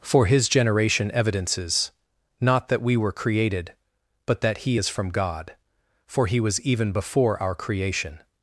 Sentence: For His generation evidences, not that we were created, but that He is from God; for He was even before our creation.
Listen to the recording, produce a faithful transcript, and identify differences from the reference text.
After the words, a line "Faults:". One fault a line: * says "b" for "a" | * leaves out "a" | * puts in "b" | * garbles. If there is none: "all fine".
For His generation evidences, not that we were created, but that He is from God; for He was even before our creation.
Faults:
all fine